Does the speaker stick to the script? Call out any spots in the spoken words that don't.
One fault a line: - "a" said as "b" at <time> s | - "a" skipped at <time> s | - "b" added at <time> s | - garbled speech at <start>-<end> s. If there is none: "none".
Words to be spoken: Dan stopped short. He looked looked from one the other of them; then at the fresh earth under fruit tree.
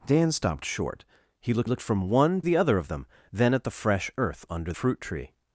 none